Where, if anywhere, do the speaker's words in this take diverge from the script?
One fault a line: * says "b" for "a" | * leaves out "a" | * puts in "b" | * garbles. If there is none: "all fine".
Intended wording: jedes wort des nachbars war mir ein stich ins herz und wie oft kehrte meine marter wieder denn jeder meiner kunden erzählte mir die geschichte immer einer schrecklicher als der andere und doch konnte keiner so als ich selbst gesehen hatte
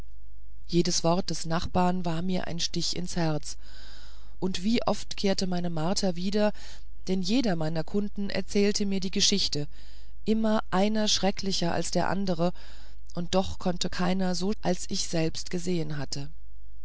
all fine